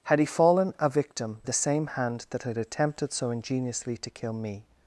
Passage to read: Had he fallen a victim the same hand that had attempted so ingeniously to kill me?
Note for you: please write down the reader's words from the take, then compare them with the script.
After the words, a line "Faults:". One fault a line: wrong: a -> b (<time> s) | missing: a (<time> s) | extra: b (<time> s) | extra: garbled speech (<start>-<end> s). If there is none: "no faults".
Had he fallen a victim the same hand that had attempted so ingeniously to kill me?
Faults:
no faults